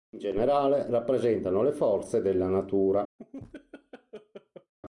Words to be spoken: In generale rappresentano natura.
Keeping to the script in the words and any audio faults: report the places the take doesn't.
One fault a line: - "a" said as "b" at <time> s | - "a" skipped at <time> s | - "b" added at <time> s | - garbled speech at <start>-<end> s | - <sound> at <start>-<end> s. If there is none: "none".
- "le forze della" added at 1.6 s
- laugh at 3.2-4.7 s